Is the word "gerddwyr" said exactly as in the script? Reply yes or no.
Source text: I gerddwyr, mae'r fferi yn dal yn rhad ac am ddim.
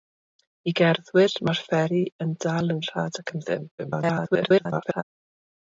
yes